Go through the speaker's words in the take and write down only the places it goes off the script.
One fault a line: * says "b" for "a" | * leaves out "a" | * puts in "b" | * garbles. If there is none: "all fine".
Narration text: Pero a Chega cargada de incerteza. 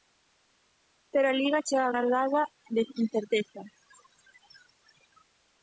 * puts in "Liga"